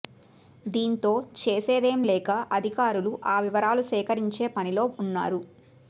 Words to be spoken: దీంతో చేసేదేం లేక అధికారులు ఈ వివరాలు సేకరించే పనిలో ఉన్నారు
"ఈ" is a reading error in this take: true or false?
true